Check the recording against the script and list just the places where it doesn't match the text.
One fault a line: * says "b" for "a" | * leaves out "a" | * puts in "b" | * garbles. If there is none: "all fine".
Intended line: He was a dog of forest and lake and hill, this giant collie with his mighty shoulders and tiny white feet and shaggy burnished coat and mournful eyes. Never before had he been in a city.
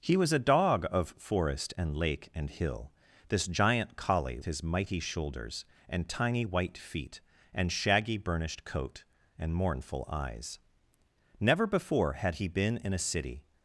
* leaves out "with"